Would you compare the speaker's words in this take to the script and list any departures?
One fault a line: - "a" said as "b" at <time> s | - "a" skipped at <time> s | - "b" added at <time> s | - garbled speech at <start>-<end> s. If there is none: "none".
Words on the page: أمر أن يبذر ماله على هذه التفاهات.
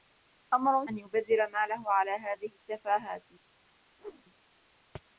none